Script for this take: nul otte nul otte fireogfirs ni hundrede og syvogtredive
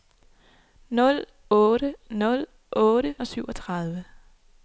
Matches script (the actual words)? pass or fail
fail